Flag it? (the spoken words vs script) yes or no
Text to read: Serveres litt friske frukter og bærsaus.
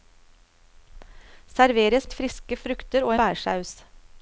no